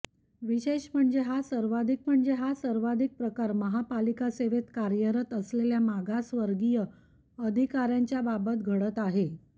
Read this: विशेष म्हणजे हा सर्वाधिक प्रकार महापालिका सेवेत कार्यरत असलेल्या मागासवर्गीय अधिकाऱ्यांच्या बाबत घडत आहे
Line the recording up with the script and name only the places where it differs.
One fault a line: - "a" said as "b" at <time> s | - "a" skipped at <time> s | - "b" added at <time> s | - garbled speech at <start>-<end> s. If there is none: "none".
- "म्हणजे हा सर्वाधिक" added at 2.1 s